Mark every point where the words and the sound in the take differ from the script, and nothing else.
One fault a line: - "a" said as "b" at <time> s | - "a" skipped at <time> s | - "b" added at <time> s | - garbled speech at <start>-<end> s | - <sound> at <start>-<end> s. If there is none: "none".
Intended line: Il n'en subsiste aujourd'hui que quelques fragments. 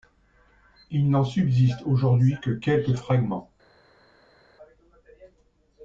none